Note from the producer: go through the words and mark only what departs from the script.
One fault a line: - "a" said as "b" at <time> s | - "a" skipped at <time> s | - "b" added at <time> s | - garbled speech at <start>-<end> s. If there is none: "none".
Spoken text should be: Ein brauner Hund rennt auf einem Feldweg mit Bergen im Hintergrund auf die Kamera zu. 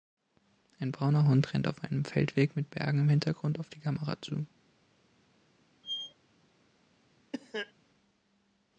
none